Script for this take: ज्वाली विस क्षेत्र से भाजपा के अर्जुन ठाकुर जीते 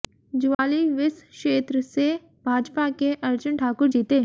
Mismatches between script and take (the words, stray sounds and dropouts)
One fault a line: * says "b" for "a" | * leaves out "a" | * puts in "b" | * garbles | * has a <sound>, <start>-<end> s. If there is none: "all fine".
* has a dropout, 0.5-0.6 s